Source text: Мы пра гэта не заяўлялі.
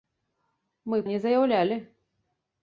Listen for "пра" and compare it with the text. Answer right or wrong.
wrong